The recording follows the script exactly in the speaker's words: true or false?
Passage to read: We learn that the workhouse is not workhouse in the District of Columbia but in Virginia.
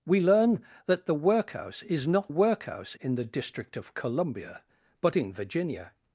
true